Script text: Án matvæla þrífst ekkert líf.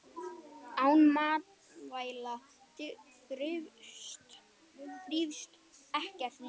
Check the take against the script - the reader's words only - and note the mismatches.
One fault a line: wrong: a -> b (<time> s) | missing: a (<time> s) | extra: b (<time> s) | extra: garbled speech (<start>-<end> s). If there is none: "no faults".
no faults